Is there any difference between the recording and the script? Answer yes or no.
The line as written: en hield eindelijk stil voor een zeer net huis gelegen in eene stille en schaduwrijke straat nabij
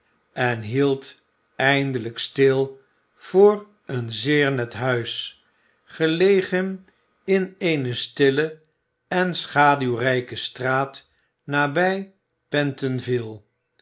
no